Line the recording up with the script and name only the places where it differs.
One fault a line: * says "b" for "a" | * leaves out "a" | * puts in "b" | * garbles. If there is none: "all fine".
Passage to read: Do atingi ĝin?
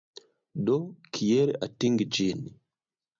* puts in "kiel"